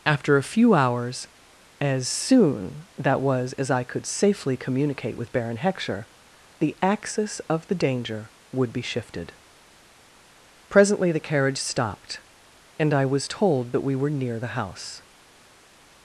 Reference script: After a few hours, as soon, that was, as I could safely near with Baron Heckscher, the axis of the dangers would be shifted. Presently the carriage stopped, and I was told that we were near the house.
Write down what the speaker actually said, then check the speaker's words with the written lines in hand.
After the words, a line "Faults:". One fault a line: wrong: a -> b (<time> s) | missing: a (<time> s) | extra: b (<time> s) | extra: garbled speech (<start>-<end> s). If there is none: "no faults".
After a few hours, as soon, that was, as I could safely communicate with Baron Heckscher, the axis of the danger would be shifted. Presently the carriage stopped, and I was told that we were near the house.
Faults:
wrong: near -> communicate (4.6 s)
wrong: dangers -> danger (7.8 s)